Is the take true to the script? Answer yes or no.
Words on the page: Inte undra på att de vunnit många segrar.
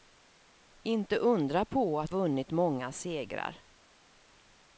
no